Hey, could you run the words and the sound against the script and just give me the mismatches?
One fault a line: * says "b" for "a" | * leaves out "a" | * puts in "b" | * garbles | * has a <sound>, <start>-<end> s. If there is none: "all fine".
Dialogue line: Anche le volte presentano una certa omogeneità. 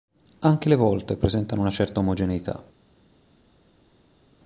all fine